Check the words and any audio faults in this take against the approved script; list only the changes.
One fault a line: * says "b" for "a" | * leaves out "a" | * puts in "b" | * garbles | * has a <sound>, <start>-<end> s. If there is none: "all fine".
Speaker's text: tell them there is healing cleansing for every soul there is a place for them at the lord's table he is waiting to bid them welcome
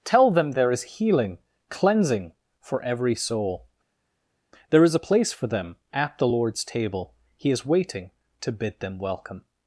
all fine